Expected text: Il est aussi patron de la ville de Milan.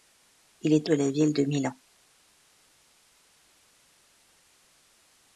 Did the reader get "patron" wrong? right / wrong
wrong